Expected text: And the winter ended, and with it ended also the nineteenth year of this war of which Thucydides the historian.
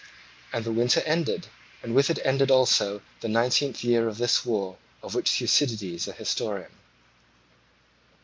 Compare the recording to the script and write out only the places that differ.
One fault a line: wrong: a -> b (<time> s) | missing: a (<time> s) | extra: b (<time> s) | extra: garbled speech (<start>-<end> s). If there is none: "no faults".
no faults